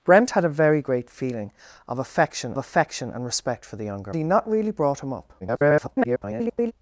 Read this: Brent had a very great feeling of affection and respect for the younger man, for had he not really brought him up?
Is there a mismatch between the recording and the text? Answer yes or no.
yes